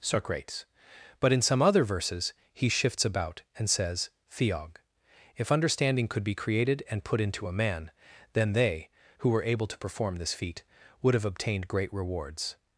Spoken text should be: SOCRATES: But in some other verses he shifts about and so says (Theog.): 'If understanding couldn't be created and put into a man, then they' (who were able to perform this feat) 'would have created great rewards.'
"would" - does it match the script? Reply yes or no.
yes